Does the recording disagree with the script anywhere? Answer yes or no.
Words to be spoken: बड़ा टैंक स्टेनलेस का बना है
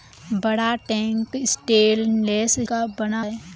no